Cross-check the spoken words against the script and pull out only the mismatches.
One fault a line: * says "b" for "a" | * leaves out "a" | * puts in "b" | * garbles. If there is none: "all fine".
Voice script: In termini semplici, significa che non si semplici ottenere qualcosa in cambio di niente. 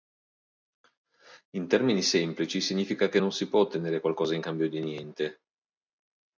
* says "può" for "semplici"